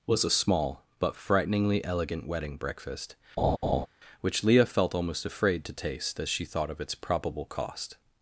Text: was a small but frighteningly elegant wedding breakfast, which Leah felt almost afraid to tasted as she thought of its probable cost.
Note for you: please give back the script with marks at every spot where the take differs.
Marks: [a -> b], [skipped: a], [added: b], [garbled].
was a small but frighteningly elegant wedding breakfast, which Leah felt almost afraid to [tasted -> taste] as she thought of its probable cost.